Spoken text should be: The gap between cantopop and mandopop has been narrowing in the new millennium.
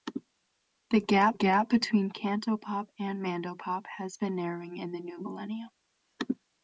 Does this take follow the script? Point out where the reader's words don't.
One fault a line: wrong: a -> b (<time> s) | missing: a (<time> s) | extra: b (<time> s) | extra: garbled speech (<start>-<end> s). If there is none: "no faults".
extra: gap (1.3 s)